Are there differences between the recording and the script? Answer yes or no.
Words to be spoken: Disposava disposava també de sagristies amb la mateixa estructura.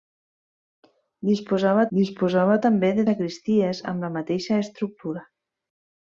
no